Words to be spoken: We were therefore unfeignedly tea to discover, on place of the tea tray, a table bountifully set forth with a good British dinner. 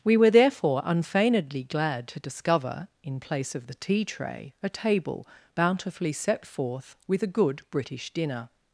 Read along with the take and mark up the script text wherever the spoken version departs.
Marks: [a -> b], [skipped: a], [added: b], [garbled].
We were therefore unfeignedly [tea -> glad] to discover, [on -> in] place of the tea tray, a table bountifully set forth with a good British dinner.